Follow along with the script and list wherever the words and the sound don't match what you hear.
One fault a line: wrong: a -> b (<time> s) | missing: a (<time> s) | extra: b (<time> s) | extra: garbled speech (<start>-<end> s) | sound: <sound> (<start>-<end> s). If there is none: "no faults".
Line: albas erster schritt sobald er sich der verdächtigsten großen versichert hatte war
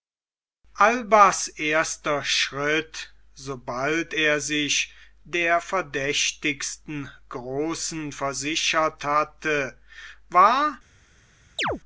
sound: chirp (11.6-11.8 s)